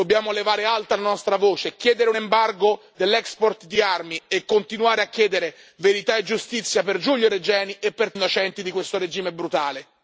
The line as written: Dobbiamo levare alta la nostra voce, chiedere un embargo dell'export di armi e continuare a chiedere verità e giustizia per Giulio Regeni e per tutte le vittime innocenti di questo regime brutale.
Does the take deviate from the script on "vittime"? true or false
true